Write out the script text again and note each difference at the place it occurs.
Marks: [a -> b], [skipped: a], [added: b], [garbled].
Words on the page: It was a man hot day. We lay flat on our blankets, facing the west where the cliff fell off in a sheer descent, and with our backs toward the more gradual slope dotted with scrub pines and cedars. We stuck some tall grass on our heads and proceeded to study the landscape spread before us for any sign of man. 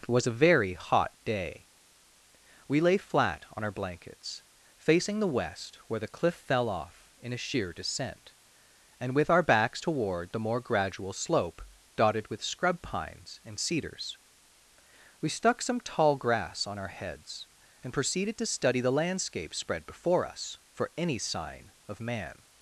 It was a [man -> very] hot day. We lay flat on our blankets, facing the west where the cliff fell off in a sheer descent, and with our backs toward the more gradual slope dotted with scrub pines and cedars. We stuck some tall grass on our heads and proceeded to study the landscape spread before us for any sign of man.